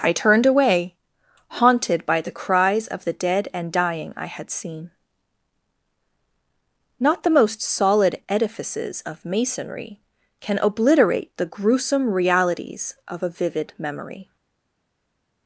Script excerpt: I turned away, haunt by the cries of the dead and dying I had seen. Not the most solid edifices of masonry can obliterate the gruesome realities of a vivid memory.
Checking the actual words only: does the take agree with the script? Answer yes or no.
no